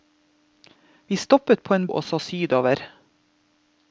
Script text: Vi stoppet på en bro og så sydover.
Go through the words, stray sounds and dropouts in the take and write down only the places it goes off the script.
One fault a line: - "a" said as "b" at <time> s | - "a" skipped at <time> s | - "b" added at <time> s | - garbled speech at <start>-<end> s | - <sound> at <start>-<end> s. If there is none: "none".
- "bro" skipped at 1.9 s